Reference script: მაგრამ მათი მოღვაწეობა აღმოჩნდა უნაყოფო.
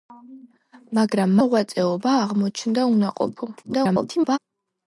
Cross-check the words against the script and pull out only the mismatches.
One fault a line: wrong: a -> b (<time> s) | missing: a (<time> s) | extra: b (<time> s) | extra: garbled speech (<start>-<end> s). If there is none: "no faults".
missing: მათი (1.4 s)
extra: garbled speech (3.6-4.4 s)